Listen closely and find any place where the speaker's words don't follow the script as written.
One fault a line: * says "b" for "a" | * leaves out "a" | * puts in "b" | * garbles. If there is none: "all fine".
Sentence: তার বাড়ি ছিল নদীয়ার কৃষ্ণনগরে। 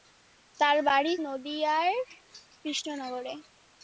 * leaves out "ছিল"